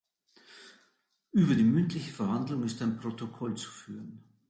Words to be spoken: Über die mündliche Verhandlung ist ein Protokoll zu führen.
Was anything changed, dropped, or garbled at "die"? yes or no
no